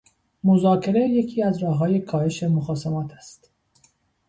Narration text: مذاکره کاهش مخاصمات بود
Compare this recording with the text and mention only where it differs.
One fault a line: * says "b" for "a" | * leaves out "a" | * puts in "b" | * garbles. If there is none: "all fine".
* puts in "یکی از راههای"
* says "است" for "بود"